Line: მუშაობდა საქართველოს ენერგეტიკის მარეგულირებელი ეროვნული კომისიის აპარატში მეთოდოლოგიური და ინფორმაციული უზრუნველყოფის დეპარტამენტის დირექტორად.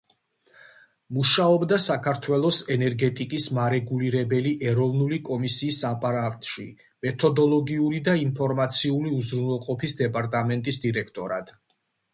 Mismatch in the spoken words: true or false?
false